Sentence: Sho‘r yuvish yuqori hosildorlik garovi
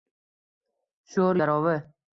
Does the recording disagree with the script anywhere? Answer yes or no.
yes